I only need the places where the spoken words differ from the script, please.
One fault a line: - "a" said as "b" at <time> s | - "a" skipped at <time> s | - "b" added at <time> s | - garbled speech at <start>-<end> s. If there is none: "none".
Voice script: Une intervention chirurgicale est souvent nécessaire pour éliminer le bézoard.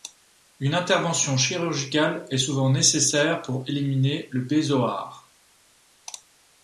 none